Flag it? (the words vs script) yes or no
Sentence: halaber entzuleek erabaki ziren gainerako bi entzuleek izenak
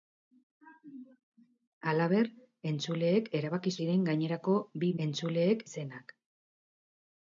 no